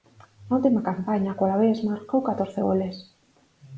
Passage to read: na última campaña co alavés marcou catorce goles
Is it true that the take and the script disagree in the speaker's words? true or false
false